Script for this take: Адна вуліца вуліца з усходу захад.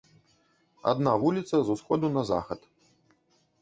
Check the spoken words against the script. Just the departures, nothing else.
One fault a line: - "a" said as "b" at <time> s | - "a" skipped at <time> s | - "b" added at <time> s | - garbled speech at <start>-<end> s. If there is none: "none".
- "вуліца" skipped at 1.6 s
- "на" added at 2.2 s